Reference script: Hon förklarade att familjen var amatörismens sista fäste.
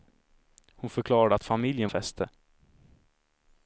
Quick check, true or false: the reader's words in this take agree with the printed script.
false